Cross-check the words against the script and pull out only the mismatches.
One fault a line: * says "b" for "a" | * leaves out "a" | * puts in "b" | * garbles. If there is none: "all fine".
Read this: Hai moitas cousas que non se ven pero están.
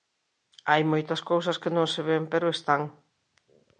all fine